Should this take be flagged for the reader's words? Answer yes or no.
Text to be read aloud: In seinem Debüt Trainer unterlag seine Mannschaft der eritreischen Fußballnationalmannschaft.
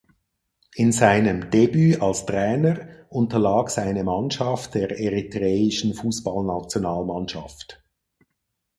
yes